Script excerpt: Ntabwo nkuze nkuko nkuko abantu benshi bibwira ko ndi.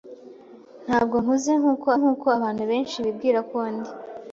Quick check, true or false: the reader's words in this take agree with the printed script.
true